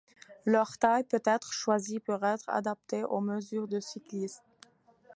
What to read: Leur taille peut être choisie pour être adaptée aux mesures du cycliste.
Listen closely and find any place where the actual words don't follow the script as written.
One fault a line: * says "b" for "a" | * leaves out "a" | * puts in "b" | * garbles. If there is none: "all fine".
all fine